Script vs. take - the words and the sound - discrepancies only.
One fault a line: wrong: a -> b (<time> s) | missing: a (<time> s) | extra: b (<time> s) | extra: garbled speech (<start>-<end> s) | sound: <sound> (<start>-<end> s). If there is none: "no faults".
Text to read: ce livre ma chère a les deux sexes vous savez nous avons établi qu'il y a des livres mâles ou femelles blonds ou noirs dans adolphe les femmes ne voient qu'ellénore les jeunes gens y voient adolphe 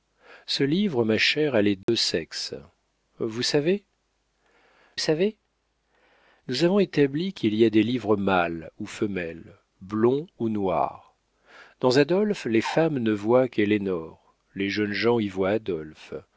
sound: dropout (1.8-1.9 s)
extra: savez (5.0 s)